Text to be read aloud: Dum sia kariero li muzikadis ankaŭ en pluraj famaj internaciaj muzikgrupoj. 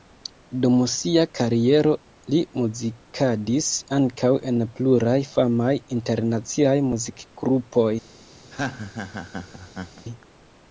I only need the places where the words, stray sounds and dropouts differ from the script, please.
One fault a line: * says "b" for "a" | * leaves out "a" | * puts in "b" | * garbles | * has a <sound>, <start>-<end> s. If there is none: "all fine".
* has a laugh, 8.5-10.1 s